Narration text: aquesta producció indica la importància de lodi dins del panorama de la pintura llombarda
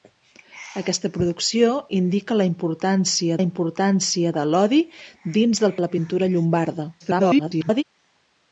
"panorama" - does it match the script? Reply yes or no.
no